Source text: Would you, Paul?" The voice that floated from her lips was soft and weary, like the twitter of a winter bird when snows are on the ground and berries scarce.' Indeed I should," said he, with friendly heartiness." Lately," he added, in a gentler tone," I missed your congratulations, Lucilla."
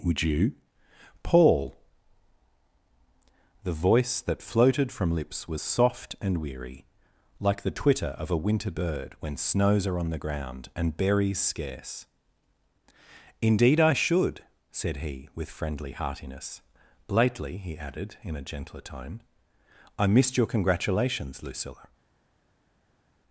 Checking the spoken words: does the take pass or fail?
fail